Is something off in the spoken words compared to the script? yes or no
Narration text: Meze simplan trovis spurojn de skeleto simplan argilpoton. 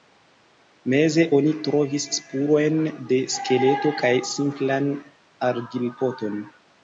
yes